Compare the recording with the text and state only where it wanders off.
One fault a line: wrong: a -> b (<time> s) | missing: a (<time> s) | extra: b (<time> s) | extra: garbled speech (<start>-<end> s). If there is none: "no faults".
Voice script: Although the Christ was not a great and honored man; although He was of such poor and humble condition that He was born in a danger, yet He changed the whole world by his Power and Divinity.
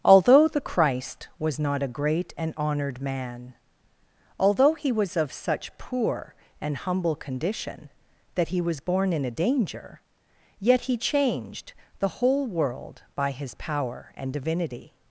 no faults